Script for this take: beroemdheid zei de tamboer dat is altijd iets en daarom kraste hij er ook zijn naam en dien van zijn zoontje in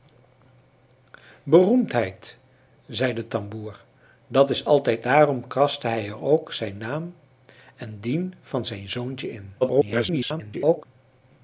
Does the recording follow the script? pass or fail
fail